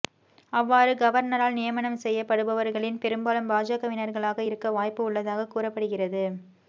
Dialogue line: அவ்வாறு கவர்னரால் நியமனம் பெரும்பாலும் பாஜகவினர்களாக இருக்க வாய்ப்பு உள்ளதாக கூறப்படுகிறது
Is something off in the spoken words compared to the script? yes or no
yes